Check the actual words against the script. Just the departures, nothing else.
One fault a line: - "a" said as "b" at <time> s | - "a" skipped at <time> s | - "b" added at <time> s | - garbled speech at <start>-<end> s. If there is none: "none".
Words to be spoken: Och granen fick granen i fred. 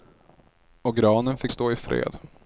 - "granen" said as "stå" at 1.5 s